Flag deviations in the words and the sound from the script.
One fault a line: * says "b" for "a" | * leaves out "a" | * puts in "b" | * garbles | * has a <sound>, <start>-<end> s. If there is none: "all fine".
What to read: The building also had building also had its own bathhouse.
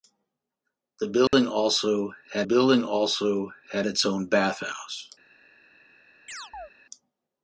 * has a dropout, 1.3-1.3 s
* has a chirp, 6.3-6.7 s